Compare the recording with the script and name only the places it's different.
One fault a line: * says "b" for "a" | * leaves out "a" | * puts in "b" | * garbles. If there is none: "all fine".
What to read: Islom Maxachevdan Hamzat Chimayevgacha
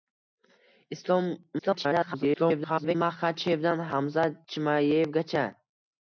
* garbles